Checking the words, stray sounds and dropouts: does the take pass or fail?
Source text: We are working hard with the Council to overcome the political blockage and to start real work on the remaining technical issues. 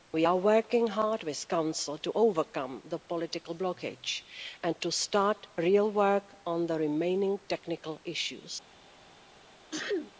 fail